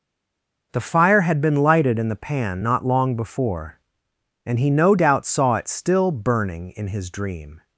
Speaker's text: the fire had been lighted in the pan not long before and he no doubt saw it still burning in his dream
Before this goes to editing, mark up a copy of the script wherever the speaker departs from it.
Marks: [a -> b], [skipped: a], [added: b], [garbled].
the fire had been lighted in the pan not long before and he no doubt saw it still burning in his dream